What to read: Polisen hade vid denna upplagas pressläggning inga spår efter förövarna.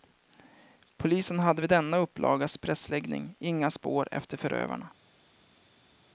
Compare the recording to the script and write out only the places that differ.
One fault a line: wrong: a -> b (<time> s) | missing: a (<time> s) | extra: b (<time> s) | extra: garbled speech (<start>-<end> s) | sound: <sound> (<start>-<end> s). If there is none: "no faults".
no faults